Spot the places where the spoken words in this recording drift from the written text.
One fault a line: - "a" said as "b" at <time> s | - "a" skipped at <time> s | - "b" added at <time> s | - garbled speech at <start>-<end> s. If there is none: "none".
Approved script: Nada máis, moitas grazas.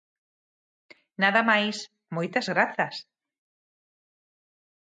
none